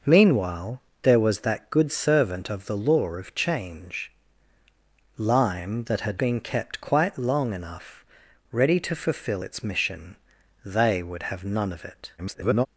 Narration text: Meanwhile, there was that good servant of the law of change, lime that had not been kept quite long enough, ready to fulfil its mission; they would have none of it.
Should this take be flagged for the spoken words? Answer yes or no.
yes